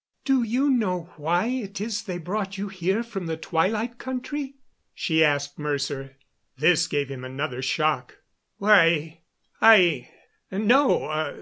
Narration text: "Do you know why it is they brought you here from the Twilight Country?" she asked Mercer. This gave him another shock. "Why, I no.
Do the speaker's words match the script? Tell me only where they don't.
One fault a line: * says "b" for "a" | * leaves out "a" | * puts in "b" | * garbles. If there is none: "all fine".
all fine